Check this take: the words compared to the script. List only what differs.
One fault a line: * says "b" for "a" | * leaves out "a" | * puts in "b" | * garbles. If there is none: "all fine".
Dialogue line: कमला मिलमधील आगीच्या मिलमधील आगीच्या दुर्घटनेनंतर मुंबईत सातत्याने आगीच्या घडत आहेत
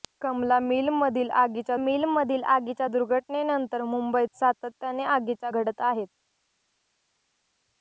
all fine